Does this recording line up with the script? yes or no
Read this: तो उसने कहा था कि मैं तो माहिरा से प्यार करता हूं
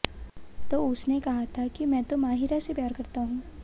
yes